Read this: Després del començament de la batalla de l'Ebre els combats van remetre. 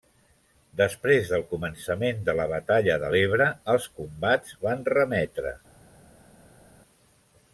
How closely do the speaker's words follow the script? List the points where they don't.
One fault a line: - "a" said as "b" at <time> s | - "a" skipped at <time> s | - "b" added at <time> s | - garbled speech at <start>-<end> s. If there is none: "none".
none